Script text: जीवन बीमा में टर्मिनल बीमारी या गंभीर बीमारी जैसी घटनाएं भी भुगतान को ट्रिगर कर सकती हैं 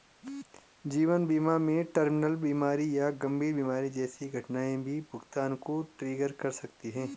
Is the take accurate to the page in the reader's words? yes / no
yes